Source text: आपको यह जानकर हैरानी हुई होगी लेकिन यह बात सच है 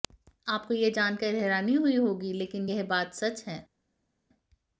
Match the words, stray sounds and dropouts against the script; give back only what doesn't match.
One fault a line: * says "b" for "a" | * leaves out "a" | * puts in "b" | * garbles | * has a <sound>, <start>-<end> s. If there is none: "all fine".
all fine